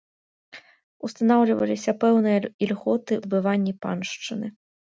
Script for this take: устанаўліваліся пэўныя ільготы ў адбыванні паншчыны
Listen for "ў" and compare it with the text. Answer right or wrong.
wrong